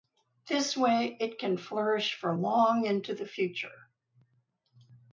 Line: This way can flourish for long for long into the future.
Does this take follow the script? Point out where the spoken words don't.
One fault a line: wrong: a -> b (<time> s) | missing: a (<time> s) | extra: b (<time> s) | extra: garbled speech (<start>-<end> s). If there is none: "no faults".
extra: it (1.2 s)
missing: for long (2.8 s)